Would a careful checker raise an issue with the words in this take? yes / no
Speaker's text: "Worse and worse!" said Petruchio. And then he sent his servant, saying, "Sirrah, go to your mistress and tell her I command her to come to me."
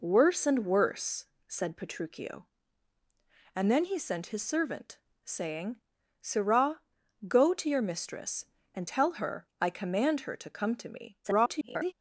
yes